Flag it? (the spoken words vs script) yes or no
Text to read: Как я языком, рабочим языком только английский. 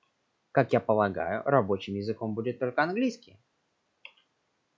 yes